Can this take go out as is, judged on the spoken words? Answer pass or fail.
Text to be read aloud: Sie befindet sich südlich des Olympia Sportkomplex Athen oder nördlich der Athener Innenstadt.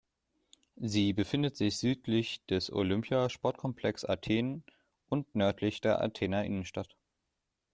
fail